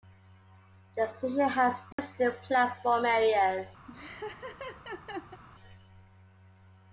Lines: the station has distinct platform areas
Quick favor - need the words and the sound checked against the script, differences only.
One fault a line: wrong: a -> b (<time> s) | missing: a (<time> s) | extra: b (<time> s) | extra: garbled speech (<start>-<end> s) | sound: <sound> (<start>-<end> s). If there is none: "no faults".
sound: dropout (1.9-2.0 s)
sound: laugh (3.9-5.4 s)